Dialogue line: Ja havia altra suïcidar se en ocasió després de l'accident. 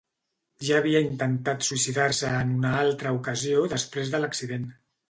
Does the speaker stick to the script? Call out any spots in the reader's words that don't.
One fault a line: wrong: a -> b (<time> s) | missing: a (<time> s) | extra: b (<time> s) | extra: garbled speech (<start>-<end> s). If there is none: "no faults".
wrong: altra -> intentat (1.1 s)
extra: una altra (2.6 s)